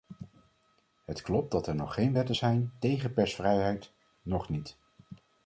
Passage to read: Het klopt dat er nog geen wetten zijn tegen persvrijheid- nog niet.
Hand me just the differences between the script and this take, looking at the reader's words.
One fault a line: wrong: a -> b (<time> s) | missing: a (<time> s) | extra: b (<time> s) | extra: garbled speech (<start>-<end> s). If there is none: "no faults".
no faults